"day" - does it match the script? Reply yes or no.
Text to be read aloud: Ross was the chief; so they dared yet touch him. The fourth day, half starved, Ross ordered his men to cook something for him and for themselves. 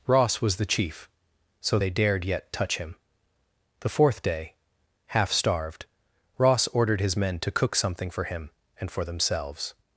yes